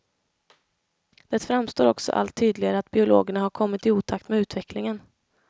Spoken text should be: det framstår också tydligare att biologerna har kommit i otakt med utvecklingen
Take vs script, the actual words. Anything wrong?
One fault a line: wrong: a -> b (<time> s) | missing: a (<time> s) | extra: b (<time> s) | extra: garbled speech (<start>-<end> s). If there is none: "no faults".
extra: allt (2.1 s)